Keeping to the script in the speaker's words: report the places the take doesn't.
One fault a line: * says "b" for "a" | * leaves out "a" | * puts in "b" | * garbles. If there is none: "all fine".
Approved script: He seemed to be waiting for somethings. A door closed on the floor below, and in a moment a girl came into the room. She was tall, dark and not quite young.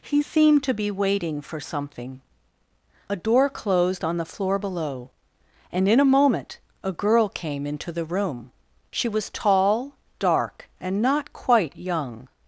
* says "something" for "somethings"